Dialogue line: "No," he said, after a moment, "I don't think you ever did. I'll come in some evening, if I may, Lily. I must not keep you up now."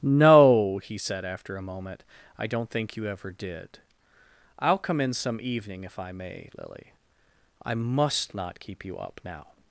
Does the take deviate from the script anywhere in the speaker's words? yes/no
no